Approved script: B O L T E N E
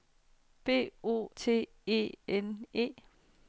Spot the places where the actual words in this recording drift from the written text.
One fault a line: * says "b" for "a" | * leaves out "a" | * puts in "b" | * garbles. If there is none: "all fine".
* leaves out "L"